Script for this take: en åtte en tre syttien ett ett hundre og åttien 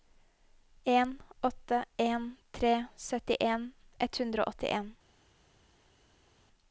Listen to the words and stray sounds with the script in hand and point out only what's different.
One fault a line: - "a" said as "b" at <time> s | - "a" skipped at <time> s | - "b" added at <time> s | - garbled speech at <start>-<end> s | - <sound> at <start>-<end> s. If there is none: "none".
- "ett" skipped at 4.2 s